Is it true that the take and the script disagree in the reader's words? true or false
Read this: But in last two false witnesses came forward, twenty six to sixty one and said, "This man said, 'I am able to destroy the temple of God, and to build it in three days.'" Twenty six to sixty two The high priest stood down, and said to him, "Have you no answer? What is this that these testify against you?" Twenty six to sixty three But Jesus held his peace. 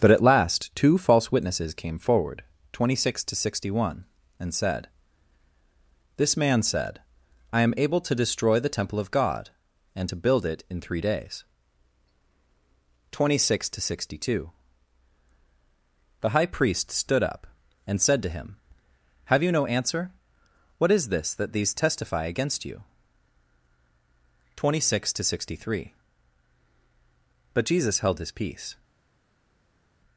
true